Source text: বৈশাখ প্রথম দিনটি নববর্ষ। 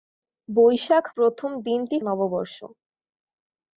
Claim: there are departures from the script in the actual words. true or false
false